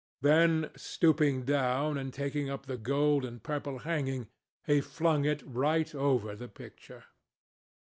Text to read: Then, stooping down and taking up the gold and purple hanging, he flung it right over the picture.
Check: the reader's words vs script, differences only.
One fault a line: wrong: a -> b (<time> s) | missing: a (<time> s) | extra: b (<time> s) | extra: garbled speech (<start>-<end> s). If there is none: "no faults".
no faults